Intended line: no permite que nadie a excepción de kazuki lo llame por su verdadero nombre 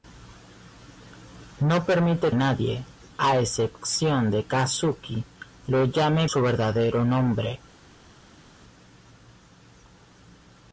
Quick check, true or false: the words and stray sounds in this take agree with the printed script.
false